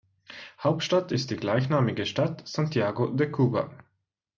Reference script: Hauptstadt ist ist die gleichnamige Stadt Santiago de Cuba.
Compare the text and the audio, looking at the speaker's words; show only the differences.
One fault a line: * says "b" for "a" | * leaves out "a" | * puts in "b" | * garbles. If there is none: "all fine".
* leaves out "ist"